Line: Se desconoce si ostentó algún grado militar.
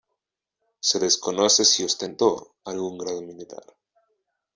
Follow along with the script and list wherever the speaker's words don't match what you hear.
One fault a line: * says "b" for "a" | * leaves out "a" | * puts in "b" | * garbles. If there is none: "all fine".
all fine